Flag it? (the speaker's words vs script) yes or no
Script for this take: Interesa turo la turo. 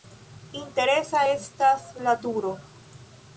yes